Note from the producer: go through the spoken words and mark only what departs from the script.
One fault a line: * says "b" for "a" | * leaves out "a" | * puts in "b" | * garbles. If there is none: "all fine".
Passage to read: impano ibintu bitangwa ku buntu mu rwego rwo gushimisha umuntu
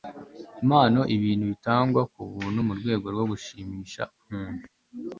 all fine